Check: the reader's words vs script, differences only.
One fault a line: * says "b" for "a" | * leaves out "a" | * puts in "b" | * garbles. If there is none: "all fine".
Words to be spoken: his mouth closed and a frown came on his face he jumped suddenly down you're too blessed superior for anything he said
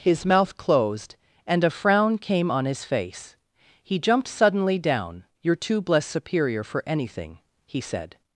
all fine